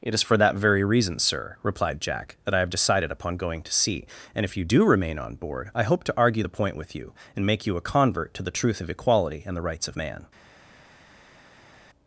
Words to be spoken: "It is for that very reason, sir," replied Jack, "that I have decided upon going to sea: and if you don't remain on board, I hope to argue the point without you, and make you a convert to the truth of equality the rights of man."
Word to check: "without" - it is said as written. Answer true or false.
false